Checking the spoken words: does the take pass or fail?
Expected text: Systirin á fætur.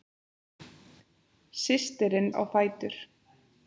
pass